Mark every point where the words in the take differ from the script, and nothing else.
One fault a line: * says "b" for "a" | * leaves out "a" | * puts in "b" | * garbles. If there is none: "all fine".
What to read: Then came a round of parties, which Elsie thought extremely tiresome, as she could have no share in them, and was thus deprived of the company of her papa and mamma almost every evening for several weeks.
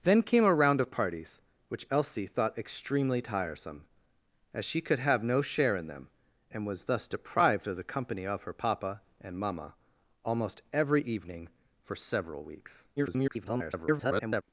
* garbles